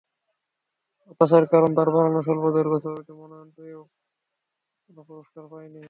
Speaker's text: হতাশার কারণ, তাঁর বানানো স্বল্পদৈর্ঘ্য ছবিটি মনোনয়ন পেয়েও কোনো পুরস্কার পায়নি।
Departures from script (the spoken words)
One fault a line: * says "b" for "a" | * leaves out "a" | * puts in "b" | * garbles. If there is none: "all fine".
all fine